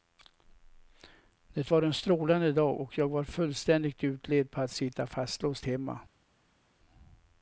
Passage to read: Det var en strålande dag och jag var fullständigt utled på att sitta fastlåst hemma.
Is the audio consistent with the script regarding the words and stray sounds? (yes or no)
yes